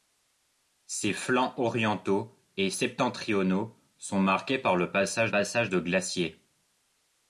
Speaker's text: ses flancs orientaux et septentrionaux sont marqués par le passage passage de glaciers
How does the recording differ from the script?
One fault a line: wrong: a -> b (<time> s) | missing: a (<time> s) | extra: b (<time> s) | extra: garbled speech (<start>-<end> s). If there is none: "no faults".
no faults